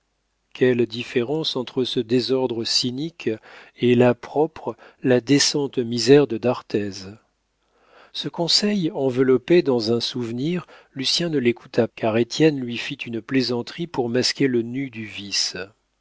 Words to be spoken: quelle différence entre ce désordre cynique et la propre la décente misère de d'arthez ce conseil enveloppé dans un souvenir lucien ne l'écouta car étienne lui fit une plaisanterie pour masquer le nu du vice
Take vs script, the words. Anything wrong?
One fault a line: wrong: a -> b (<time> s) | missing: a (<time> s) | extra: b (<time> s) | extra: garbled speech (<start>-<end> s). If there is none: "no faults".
no faults